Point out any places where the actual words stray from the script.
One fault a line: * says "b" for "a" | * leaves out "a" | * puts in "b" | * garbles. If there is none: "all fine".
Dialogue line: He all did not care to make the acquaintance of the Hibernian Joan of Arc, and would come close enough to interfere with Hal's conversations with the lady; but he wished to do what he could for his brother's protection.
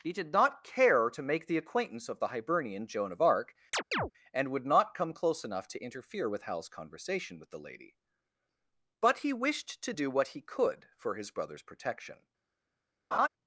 * leaves out "all"
* puts in "not"
* says "conversation" for "conversations"